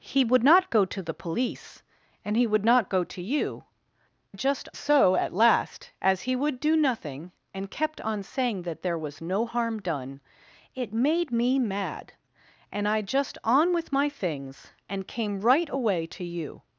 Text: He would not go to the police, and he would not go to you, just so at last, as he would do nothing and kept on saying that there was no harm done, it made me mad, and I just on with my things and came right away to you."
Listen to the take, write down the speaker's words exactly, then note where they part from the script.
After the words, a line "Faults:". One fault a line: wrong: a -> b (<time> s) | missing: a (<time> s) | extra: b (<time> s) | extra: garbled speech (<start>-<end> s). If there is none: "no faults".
He would not go to the police, and he would not go to you, just so at last, as he would do nothing and kept on saying that there was no harm done, it made me mad, and I just on with my things and came right away to you."
Faults:
no faults